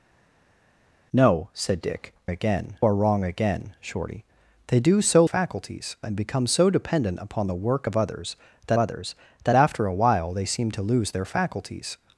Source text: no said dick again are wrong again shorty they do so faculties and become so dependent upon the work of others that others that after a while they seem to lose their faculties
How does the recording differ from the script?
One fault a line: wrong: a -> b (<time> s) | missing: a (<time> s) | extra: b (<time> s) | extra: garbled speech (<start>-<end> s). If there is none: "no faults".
no faults